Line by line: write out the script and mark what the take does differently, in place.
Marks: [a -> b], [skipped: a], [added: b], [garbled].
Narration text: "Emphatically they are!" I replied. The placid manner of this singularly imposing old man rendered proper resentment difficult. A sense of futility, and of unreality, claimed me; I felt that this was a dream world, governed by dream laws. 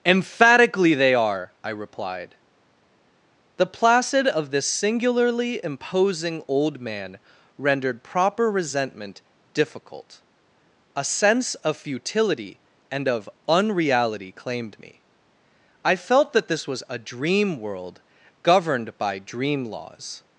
"Emphatically they are!" I replied. The placid [skipped: manner] of this singularly imposing old man rendered proper resentment difficult. A sense of futility, and of unreality, claimed me; I felt that this was a dream world, governed by dream laws.